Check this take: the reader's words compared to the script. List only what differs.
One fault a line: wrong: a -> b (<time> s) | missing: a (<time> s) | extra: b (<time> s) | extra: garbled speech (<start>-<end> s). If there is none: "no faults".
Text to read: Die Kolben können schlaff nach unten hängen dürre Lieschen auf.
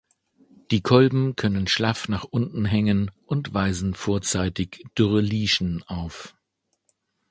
extra: und weisen vorzeitig (3.3 s)